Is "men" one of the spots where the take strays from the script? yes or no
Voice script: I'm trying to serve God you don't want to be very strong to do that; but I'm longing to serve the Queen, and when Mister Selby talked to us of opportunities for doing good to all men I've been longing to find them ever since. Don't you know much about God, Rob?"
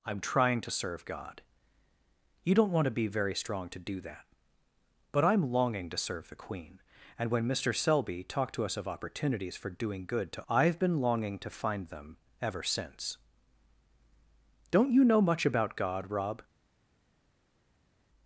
yes